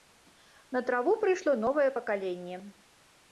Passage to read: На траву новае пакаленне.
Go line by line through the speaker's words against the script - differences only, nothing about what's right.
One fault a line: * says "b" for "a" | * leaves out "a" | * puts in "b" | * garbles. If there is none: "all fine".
* puts in "прыйшло"